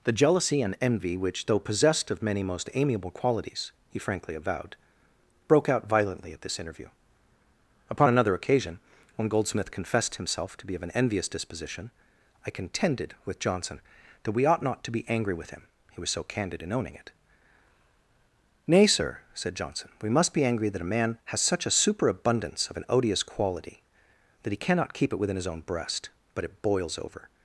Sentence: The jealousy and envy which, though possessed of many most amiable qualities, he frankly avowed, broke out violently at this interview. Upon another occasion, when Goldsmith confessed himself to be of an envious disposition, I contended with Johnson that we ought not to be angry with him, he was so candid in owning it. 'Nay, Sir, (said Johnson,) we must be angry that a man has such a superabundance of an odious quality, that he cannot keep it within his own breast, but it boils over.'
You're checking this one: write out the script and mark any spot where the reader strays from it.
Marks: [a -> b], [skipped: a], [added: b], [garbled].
The jealousy and envy which, though possessed of many most amiable qualities, he frankly avowed, broke out violently at this interview. Upon another occasion, when Goldsmith confessed himself to be of an envious disposition, I contended with Johnson that we ought not to be angry with him, he was so candid in owning it. 'Nay, Sir, (said Johnson,) we must be angry that a man has such a superabundance of an odious quality, that he cannot keep it within his own breast, but it boils over.'